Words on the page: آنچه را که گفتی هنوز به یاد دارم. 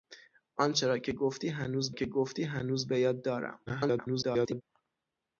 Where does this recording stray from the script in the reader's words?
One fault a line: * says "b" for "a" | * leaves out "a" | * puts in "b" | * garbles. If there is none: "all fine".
* puts in "که گفتی هنوز"
* garbles